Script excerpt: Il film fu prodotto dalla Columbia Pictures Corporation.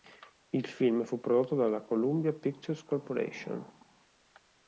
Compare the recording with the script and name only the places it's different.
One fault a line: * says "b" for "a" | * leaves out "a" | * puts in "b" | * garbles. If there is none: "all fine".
all fine